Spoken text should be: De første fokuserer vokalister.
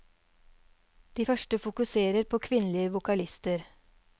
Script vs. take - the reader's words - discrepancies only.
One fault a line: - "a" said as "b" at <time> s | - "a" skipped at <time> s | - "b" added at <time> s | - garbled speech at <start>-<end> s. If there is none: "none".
- "på kvinnelige" added at 2.2 s